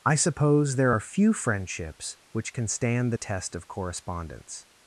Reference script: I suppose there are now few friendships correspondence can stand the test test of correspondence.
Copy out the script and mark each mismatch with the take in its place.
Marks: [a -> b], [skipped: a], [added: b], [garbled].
I suppose there are [skipped: now] few friendships [correspondence -> which] can stand the test [skipped: test] of correspondence.